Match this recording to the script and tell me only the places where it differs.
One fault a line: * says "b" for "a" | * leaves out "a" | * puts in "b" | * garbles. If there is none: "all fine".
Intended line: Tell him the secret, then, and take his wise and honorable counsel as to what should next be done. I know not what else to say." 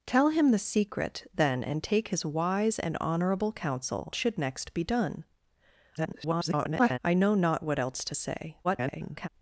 * leaves out "as to what"
* garbles
* garbles